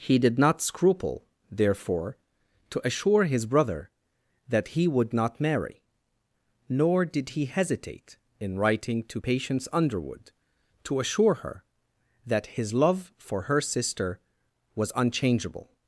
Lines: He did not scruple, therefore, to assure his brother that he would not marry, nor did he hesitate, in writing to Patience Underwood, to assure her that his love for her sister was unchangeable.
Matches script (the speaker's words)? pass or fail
pass